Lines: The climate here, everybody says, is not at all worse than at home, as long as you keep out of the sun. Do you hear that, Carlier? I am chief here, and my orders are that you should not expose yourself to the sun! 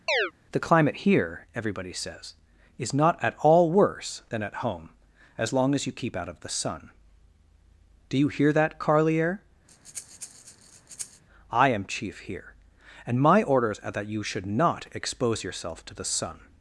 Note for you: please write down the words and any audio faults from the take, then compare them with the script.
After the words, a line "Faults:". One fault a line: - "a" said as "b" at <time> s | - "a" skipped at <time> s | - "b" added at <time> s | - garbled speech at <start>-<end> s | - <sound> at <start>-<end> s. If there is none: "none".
The climate here, everybody says, is not at all worse than at home, as long as you keep out of the sun. Do you hear that, Carlier? I am chief here, and my orders are that you should not expose yourself to the sun!
Faults:
- chirp at 0.1-0.3 s
- breath at 9.7-11.2 s